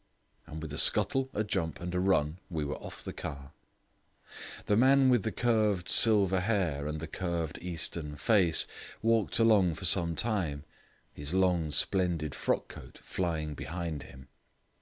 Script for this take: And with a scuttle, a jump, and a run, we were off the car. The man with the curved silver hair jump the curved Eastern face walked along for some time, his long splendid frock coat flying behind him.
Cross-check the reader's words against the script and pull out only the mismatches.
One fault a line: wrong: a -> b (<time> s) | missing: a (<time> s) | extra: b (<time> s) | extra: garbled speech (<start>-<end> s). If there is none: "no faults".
wrong: jump -> and (6.9 s)